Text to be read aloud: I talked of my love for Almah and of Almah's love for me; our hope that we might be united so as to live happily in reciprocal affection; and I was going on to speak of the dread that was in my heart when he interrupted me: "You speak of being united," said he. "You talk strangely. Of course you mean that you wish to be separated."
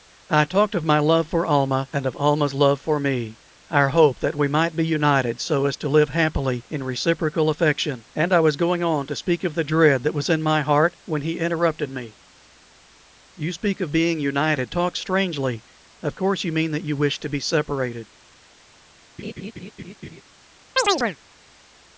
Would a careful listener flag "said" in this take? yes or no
yes